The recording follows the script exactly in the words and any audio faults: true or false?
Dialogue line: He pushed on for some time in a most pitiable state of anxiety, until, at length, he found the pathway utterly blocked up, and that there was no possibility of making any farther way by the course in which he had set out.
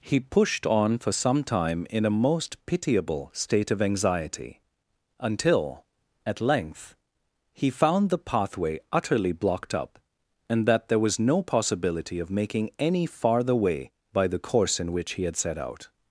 true